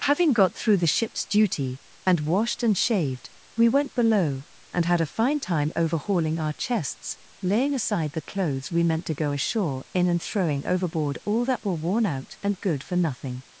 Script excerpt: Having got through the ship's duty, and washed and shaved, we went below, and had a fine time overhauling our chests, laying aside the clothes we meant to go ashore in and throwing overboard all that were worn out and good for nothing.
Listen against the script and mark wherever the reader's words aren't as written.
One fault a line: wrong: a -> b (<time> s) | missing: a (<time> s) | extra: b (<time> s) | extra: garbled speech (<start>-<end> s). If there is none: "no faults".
no faults